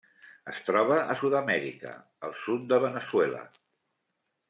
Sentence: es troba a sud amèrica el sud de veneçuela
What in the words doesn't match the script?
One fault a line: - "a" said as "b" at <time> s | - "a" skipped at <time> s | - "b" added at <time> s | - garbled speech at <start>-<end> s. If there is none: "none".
none